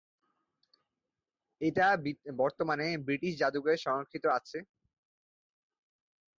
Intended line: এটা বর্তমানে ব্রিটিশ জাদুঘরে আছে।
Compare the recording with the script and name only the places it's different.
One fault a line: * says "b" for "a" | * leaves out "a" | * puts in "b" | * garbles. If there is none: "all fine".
* puts in "সংরক্ষিত"